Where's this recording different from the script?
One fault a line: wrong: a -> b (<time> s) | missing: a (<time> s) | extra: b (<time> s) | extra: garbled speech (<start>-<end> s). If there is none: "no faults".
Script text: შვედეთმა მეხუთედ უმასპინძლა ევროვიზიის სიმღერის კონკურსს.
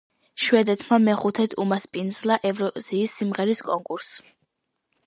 no faults